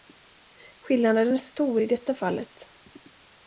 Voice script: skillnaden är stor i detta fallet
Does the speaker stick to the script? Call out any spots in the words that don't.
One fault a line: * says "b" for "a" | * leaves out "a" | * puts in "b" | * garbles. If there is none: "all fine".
all fine